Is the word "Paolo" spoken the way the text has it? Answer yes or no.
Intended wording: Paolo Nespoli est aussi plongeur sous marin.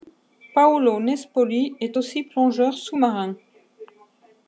yes